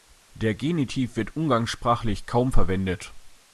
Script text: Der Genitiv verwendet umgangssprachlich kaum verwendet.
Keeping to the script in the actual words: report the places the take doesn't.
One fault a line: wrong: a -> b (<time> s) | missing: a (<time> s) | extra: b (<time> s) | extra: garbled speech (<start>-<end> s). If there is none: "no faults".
wrong: verwendet -> wird (1.1 s)